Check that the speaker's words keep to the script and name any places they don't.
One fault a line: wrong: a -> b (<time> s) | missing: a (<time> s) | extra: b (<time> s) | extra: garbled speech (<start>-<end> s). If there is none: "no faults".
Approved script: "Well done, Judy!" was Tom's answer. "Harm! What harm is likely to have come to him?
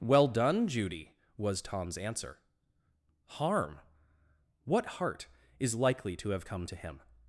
wrong: harm -> heart (4.8 s)